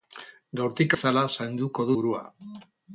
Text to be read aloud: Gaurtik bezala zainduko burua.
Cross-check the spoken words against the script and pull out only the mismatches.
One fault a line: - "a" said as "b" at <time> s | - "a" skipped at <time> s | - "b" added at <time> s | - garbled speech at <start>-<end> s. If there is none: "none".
none